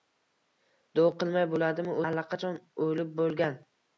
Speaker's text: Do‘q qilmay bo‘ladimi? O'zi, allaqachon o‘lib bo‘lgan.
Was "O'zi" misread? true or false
true